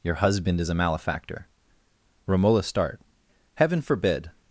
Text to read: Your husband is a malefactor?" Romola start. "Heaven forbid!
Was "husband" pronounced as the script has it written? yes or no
yes